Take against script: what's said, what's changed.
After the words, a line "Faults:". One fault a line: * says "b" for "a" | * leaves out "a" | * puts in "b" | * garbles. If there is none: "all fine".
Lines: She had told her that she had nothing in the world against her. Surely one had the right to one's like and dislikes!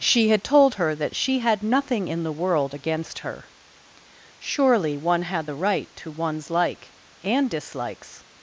She had told her that she had nothing in the world against her. Surely one had the right to one's like and dislikes!
Faults:
all fine